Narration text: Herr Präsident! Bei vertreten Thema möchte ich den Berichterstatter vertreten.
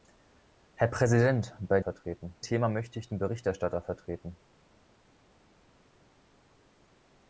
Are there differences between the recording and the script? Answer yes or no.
no